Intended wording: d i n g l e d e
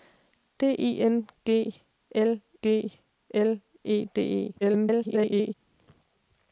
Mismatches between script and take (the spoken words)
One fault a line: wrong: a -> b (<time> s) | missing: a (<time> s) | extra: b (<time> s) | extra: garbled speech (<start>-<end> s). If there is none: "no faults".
extra: g l (2.6 s)
extra: garbled speech (4.6-5.5 s)